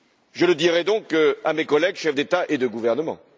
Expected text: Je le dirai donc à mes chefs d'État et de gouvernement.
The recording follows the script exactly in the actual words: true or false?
false